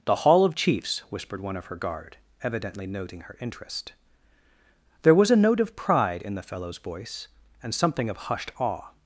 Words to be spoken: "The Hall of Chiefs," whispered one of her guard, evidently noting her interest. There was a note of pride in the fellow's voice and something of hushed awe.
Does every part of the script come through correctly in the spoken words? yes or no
yes